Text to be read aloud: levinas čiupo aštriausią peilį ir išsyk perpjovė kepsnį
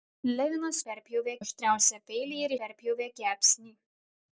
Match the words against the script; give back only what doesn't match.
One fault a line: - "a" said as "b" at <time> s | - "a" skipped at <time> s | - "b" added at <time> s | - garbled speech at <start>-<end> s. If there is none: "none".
- "čiupo" said as "perpjovė" at 0.9 s
- "išsyk" skipped at 2.5 s